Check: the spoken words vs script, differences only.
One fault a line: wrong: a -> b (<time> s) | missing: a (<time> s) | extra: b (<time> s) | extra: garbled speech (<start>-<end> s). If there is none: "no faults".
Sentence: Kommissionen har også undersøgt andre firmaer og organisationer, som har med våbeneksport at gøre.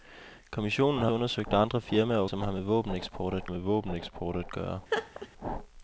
missing: også (1.1 s)
missing: organisationer (2.2 s)
extra: med våbeneksport at (3.5 s)